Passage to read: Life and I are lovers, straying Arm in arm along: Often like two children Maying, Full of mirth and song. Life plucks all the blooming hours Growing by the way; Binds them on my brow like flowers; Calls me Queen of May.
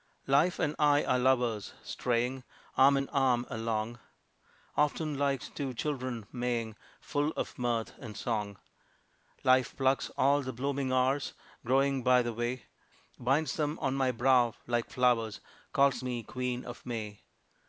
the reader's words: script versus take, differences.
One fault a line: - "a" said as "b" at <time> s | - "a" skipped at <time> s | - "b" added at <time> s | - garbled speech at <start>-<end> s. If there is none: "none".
none